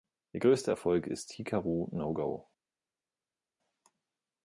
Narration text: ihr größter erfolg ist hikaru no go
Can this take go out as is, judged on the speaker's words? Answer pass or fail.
pass